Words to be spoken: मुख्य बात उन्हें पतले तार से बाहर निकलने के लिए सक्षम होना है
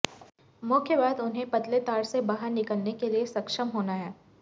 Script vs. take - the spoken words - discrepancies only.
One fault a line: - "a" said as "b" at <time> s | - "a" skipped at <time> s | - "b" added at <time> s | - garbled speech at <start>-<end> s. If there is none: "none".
none